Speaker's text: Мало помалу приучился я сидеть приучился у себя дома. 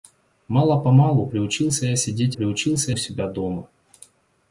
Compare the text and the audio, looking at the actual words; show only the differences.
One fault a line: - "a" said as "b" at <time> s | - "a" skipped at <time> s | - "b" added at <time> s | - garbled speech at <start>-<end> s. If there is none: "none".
none